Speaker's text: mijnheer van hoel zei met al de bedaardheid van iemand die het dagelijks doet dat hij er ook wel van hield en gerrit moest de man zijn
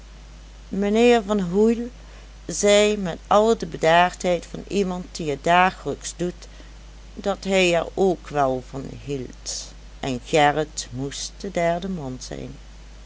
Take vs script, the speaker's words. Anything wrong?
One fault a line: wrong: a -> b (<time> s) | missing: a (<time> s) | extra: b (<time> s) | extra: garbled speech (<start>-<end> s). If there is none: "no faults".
extra: derde (11.5 s)